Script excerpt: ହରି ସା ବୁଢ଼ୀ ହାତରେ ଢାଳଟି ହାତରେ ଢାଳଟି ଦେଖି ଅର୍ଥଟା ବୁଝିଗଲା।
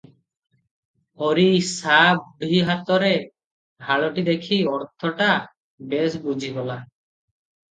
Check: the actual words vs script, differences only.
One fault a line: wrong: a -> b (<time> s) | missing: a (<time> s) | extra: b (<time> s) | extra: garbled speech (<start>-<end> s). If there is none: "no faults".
missing: ହାତରେ ଢାଳଟି (4.2 s)
extra: ବେଶ (5.8 s)